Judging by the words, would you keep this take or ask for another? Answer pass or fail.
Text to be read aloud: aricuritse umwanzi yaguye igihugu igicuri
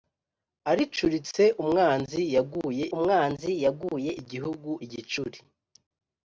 fail